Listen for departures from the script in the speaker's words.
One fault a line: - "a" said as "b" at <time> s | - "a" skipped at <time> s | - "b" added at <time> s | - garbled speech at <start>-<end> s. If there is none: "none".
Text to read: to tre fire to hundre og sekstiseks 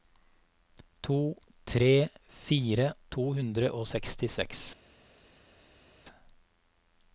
none